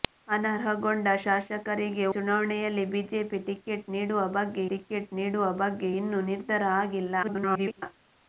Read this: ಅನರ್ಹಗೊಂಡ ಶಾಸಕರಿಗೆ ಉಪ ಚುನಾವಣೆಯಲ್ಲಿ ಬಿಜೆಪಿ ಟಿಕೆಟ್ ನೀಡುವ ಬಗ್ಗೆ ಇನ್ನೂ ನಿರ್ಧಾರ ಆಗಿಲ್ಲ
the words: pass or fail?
fail